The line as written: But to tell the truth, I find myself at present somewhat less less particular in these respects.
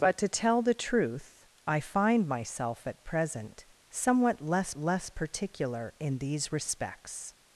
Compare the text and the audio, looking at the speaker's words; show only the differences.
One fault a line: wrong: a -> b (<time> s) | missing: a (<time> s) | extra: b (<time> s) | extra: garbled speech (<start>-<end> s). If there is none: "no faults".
no faults